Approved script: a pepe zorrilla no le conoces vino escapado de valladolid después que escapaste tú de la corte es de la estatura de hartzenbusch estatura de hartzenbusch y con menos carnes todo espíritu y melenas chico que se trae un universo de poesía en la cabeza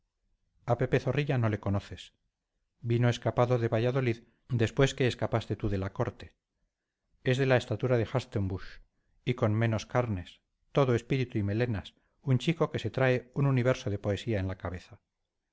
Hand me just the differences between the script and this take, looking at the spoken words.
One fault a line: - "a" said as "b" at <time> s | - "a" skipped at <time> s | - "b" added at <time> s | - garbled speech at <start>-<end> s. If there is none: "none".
- "estatura de hartzenbusch" skipped at 8.8 s
- "un" added at 12.2 s